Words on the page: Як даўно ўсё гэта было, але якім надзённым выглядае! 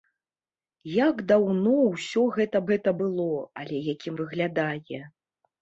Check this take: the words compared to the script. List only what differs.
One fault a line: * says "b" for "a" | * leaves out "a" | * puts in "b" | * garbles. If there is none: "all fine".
* puts in "гэта"
* leaves out "надзённым"